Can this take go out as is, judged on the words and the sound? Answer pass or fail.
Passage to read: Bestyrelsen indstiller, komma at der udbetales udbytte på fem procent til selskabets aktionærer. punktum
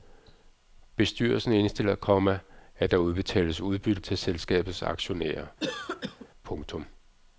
fail